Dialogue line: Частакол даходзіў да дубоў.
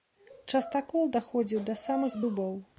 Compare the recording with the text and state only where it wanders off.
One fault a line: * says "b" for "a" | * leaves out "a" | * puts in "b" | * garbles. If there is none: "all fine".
* puts in "самых"